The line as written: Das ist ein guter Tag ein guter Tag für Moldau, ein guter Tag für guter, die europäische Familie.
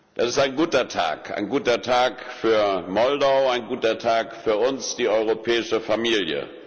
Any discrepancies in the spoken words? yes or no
yes